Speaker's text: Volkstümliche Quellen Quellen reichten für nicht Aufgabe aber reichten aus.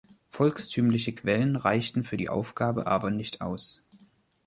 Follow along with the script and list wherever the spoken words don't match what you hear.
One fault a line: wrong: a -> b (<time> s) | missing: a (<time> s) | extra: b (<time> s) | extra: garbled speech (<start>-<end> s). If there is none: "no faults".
missing: Quellen (1.6 s)
wrong: nicht -> die (2.1 s)
wrong: reichten -> nicht (3.1 s)